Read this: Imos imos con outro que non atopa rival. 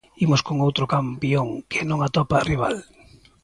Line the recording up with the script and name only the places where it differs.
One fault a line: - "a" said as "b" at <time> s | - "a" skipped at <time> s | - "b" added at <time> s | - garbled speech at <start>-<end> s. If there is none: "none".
- "imos" skipped at 0.4 s
- "campión" added at 0.9 s